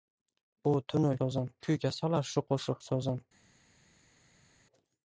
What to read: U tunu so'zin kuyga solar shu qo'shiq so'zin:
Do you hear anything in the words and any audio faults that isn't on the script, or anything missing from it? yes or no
no